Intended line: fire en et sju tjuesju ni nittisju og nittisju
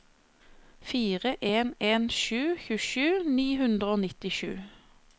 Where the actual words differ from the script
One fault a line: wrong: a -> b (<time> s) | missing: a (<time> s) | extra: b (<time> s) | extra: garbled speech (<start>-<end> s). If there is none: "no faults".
wrong: et -> en (1.9 s)
wrong: nittisju -> hundre (3.6 s)